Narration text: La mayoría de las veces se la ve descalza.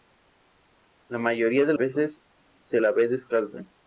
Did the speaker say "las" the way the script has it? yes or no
no